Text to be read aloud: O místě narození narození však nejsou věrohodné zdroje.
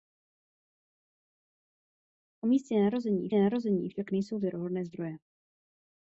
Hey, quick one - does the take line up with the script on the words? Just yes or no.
yes